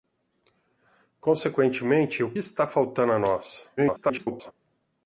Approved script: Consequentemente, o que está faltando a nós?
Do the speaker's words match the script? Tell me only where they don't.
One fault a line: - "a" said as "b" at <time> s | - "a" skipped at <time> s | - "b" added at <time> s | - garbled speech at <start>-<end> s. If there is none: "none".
- "que" skipped at 2.3 s
- garbled speech at 3.8-4.5 s